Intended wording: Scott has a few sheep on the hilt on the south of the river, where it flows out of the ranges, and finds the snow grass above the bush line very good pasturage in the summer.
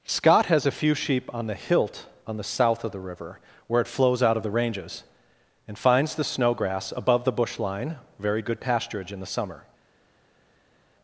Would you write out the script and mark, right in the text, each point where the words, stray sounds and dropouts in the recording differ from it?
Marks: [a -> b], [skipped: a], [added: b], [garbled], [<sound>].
Scott has a few sheep on the hilt on the south of the river, where it flows out of the ranges, and finds the snow grass above the bush line very good pasturage in the summer.